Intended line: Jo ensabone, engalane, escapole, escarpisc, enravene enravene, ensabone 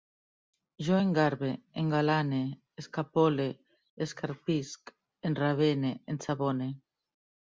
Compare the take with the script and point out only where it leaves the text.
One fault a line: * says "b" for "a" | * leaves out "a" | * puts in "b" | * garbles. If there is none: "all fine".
* says "engarbe" for "ensabone"
* leaves out "enravene"